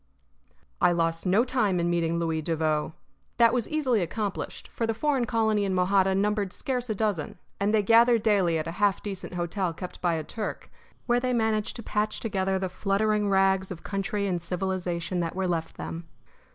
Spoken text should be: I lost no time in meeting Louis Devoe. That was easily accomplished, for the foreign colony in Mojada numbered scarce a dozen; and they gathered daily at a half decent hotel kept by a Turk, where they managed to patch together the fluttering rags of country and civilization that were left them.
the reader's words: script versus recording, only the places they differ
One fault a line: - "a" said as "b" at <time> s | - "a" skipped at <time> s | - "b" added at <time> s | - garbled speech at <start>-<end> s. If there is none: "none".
none